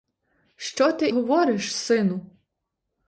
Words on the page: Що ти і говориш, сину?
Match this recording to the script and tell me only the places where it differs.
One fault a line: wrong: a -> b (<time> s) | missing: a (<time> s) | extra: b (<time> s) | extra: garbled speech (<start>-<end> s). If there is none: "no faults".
missing: і (1.1 s)